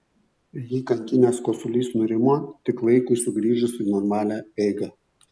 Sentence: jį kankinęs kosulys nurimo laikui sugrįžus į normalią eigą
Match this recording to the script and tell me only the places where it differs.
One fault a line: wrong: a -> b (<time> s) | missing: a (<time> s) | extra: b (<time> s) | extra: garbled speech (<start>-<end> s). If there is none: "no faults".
extra: tik (2.7 s)